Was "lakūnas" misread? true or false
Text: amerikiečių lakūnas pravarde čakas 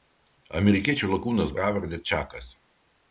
false